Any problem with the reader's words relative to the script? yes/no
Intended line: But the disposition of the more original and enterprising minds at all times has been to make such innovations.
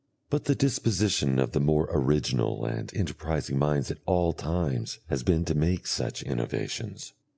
no